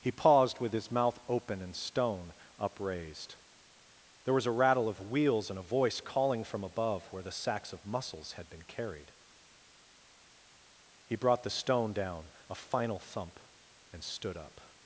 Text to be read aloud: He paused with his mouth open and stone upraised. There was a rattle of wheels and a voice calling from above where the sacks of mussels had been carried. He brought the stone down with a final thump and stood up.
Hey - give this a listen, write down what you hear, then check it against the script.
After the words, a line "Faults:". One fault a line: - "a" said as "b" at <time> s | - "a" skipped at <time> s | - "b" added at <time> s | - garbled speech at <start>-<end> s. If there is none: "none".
He paused with his mouth open and stone upraised. There was a rattle of wheels and a voice calling from above where the sacks of mussels had been carried. He brought the stone down a final thump and stood up.
Faults:
- "with" skipped at 12.3 s